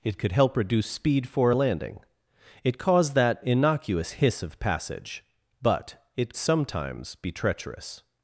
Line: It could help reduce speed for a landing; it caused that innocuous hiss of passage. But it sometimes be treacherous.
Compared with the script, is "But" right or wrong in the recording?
right